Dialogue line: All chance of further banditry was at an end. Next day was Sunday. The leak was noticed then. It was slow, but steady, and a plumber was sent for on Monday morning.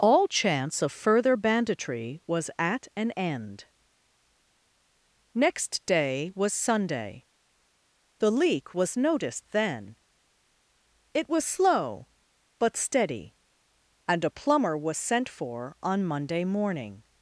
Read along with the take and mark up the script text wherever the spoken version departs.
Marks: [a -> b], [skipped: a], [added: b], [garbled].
All chance of further banditry was at an end. Next day was Sunday. The leak was noticed then. It was slow, but steady, and a plumber was sent for on Monday morning.